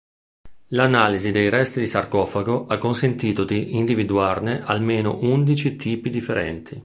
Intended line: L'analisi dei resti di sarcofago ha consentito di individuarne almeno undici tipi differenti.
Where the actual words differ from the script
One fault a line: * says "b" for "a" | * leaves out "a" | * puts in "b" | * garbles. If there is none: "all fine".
all fine